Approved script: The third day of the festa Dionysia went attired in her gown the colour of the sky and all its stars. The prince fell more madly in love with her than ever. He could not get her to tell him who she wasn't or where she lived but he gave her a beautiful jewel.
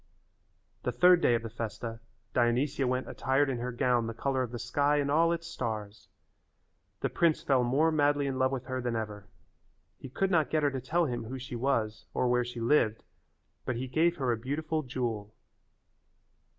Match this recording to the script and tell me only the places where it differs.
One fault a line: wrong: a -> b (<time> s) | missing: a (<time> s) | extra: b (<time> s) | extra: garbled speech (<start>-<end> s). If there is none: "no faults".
wrong: wasn't -> was (11.5 s)